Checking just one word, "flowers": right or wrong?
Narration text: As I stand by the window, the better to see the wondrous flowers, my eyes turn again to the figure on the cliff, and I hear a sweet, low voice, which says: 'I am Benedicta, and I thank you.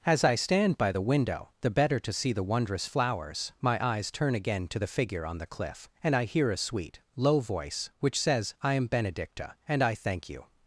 right